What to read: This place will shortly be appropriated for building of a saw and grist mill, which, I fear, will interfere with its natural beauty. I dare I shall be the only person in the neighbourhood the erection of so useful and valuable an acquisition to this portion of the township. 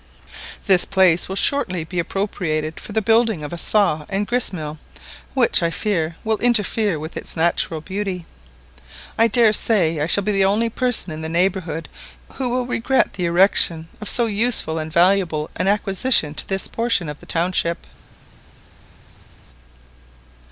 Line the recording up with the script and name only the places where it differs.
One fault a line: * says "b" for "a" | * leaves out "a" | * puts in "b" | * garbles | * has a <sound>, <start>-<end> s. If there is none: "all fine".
* puts in "the"
* puts in "say"
* puts in "who will regret"